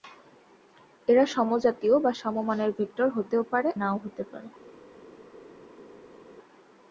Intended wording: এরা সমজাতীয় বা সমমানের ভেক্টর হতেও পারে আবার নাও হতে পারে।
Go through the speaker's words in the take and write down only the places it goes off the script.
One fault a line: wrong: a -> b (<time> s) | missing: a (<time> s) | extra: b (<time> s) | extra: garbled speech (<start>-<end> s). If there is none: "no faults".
missing: আবার (3.7 s)